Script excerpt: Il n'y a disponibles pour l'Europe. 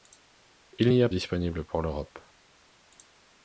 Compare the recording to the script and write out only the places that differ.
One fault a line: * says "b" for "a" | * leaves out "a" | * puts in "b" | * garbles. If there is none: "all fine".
all fine